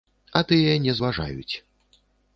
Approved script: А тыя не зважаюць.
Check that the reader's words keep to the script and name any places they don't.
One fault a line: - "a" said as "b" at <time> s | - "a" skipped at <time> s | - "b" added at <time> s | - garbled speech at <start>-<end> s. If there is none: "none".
none